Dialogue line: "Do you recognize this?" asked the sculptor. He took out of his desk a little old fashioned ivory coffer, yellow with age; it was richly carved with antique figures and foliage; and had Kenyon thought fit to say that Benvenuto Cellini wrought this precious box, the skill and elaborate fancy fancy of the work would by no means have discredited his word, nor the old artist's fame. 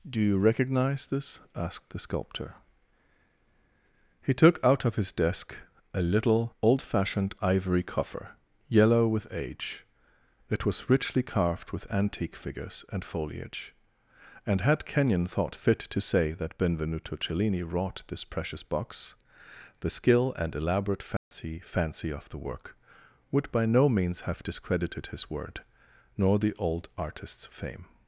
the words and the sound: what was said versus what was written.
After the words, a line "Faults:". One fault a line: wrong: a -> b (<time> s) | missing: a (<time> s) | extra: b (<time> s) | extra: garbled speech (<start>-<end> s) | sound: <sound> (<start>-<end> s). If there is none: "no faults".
"Do you recognize this?" asked the sculptor. He took out of his desk a little old fashioned ivory coffer, yellow with age; it was richly carved with antique figures and foliage; and had Kenyon thought fit to say that Benvenuto Cellini wrought this precious box, the skill and elaborate fancy fancy of the work would by no means have discredited his word, nor the old artist's fame.
Faults:
sound: dropout (21.2-21.3 s)